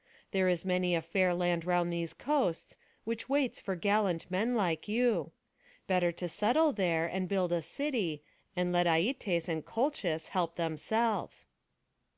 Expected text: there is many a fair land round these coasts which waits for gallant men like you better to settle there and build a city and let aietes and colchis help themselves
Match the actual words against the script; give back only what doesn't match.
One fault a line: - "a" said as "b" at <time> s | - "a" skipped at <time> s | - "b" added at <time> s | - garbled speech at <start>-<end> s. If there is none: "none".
none